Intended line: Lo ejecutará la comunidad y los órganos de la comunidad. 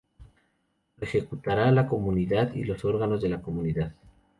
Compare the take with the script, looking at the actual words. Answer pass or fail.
pass